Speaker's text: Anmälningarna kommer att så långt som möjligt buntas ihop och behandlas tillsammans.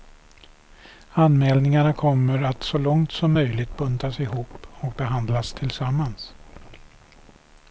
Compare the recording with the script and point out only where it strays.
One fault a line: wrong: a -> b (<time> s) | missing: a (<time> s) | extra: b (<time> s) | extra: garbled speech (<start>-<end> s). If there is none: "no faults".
no faults